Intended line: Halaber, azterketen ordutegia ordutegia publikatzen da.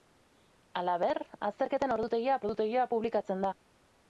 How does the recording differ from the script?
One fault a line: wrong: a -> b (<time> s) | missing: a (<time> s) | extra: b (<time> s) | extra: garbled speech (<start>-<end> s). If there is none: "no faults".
no faults